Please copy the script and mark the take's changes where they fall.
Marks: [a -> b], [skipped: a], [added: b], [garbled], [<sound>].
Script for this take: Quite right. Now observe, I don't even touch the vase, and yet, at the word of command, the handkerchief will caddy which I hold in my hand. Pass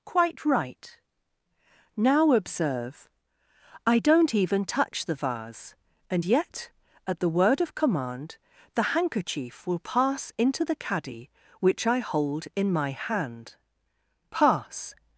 Quite right. Now observe, I don't even touch the vase, and yet, at the word of command, the handkerchief will [added: pass into the] caddy which I hold in my hand. Pass